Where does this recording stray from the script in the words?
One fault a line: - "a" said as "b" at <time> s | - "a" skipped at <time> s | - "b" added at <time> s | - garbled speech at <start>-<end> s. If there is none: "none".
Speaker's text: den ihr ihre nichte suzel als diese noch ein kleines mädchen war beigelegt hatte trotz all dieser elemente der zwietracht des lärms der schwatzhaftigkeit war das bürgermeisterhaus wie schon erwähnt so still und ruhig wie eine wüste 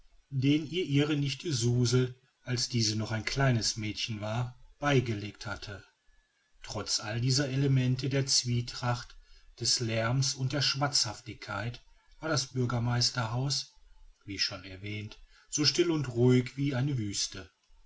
- "und" added at 10.3 s